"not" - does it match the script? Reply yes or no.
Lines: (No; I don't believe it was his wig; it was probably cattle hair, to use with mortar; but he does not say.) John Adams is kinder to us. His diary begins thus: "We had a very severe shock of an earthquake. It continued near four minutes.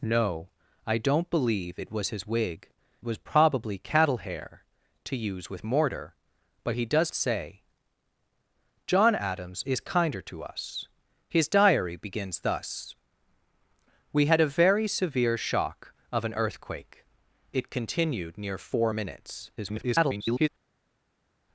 no